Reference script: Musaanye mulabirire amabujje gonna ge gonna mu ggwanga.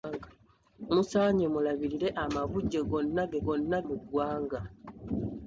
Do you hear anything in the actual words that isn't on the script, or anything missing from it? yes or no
no